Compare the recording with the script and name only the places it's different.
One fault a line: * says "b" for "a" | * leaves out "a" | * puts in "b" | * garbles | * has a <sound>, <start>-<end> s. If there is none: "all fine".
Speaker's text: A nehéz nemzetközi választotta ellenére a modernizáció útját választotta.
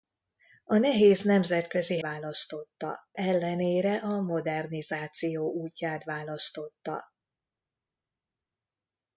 all fine